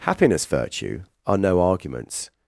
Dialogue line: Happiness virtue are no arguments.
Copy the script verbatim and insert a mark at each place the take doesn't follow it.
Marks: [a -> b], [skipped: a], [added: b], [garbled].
Happiness virtue are no arguments.